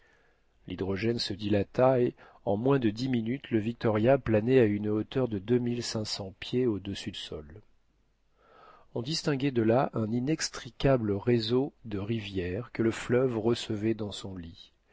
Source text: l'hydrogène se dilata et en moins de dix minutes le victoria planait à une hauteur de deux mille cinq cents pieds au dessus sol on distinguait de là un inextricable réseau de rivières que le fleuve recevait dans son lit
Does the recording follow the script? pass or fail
pass